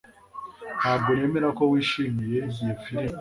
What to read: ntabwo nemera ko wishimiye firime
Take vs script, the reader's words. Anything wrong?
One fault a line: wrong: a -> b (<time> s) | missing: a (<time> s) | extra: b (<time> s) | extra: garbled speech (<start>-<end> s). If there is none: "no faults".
extra: iyo (2.6 s)